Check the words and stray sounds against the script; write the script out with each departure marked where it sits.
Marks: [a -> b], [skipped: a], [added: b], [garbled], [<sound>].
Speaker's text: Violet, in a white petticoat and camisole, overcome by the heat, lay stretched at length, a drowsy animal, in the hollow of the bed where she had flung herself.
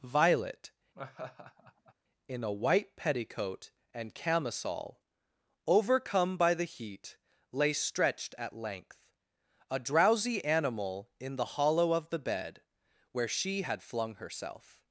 Violet, [laugh] in a white petticoat and camisole, overcome by the heat, lay stretched at length, a drowsy animal, in the hollow of the bed where she had flung herself.